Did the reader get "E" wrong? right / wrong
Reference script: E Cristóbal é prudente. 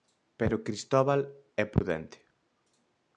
wrong